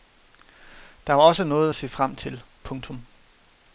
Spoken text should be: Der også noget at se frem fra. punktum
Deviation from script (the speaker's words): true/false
true